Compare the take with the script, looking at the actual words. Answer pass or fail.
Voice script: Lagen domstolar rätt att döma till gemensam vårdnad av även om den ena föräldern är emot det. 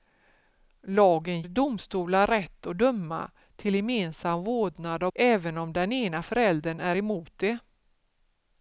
pass